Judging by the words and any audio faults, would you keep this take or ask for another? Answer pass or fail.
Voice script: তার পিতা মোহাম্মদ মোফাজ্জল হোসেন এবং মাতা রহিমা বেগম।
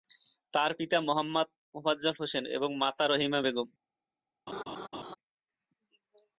fail